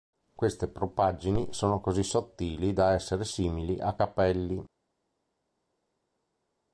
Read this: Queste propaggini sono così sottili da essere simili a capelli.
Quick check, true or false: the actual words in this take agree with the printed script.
true